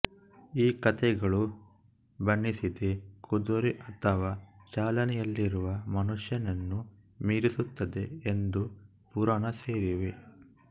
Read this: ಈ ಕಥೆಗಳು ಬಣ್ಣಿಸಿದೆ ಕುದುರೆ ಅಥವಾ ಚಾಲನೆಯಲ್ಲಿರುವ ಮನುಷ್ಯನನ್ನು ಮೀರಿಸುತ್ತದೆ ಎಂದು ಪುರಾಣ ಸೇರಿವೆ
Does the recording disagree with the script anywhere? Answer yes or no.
no